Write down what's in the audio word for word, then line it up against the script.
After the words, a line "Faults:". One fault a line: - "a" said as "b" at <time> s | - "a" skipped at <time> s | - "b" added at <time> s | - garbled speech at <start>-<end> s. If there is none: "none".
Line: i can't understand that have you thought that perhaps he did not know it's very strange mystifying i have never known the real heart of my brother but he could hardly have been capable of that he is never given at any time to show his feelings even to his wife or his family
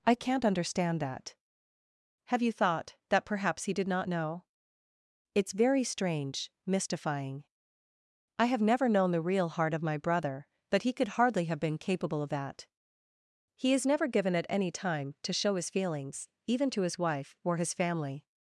i can't understand that have you thought that perhaps he did not know it's very strange mystifying i have never known the real heart of my brother but he could hardly have been capable of that he is never given at any time to show his feelings even to his wife or his family
Faults:
none